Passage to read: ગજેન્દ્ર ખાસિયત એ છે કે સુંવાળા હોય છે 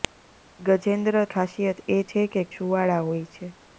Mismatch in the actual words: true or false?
false